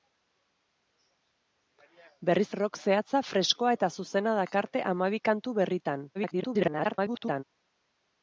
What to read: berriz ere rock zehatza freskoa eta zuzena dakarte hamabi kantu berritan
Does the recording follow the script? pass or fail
fail